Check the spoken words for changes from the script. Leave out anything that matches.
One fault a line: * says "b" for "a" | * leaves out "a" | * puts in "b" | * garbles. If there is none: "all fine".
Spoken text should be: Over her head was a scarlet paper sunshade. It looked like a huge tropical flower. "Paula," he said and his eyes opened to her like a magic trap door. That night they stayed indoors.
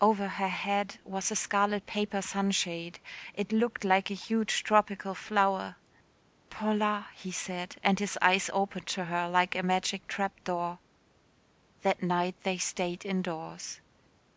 all fine